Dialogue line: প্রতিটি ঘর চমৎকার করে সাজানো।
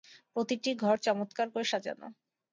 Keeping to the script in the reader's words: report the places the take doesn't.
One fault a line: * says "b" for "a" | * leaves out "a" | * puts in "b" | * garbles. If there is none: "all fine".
all fine